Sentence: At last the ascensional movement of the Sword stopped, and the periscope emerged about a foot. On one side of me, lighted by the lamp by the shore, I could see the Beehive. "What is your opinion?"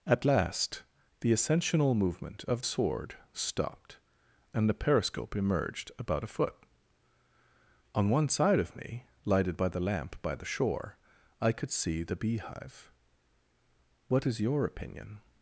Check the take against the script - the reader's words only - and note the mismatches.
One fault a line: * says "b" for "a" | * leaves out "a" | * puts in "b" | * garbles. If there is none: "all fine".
* leaves out "the"